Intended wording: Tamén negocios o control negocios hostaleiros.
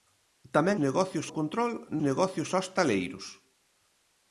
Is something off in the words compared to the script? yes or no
no